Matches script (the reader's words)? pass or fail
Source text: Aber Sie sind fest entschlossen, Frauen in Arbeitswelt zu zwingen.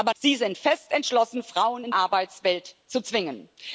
pass